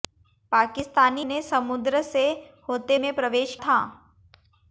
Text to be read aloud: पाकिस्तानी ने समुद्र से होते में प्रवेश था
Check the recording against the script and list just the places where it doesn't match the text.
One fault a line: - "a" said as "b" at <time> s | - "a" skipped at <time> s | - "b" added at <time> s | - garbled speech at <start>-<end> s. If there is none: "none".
none